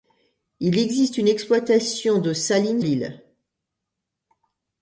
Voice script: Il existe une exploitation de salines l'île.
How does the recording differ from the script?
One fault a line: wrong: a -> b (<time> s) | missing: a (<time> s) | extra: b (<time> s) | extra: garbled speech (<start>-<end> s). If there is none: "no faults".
no faults